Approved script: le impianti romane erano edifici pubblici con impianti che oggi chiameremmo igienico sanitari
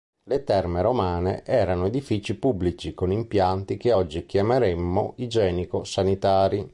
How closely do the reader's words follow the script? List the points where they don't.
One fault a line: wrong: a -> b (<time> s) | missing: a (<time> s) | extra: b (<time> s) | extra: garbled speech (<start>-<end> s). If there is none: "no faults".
wrong: impianti -> terme (0.4 s)